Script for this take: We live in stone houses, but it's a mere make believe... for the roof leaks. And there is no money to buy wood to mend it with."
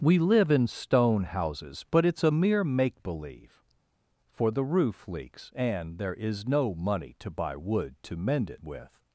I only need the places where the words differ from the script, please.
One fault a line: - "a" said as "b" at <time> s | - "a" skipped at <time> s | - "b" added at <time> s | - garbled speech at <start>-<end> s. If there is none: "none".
none